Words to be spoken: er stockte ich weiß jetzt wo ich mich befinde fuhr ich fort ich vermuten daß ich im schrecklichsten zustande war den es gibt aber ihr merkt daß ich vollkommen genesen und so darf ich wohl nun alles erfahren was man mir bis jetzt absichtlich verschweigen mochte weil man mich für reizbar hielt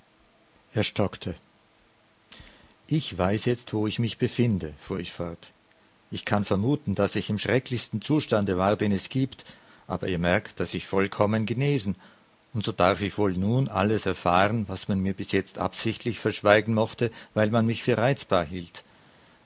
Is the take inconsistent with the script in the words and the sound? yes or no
yes